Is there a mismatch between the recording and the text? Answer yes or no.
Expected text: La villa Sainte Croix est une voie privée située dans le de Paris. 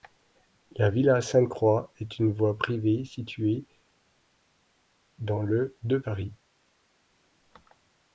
no